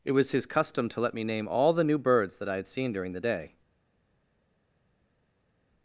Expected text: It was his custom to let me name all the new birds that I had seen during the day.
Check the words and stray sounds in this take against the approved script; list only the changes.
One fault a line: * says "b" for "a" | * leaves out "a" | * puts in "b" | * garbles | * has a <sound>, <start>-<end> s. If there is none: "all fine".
all fine